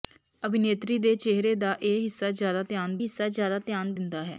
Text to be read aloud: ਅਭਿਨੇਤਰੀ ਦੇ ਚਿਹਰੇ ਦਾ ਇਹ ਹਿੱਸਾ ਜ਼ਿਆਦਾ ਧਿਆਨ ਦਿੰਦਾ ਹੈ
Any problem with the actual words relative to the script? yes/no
yes